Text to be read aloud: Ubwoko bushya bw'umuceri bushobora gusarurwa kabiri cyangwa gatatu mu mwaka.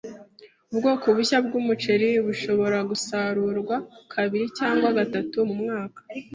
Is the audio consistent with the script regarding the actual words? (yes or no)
yes